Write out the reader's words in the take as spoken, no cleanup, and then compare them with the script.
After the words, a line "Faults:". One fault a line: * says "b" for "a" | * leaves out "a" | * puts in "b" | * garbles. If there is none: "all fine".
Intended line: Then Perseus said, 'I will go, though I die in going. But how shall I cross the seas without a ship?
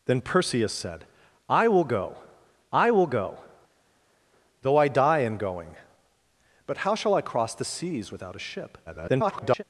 Then Perseus said, 'I will go I will go, though I die in going. But how shall I cross the seas without a ship? [garbled]
Faults:
* puts in "I will go"
* garbles